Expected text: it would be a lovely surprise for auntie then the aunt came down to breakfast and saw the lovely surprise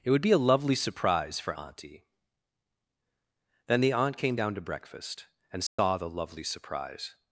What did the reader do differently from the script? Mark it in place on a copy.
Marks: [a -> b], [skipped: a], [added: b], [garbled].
it would be a lovely surprise for auntie then the aunt came down to breakfast and saw the lovely surprise